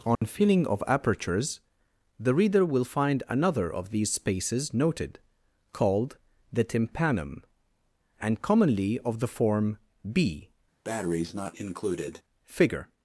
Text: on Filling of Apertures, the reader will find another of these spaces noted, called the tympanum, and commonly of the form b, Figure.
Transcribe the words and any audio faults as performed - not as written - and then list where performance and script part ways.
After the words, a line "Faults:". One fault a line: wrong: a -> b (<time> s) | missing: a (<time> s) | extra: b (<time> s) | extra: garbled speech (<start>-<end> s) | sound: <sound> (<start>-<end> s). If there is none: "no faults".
on Filling of Apertures, the reader will find another of these spaces noted, called the tympanum, and commonly of the form b, Figure.
Faults:
sound: dropout (0.2-0.2 s)
sound: breath (10.8-12.2 s)